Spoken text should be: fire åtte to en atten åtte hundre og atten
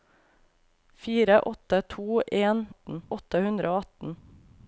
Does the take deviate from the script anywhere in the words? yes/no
no